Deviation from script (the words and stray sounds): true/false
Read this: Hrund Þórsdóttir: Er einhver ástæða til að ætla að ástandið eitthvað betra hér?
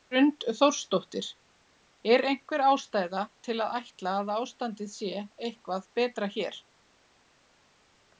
true